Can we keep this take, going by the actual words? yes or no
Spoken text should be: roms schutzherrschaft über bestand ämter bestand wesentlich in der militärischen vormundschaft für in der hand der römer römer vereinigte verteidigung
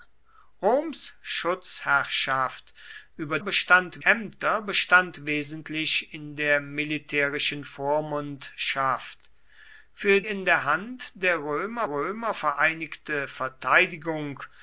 yes